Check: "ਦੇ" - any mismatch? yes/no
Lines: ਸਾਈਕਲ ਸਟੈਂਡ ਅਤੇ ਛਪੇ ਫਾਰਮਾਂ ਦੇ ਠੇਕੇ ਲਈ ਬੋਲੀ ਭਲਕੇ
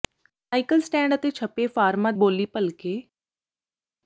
yes